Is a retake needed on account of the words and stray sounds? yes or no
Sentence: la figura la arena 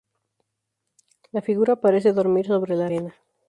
yes